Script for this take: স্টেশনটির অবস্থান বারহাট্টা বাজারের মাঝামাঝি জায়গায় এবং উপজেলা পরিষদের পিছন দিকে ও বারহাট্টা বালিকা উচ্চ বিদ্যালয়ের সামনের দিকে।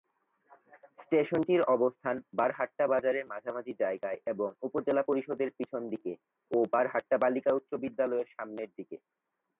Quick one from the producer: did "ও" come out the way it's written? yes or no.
yes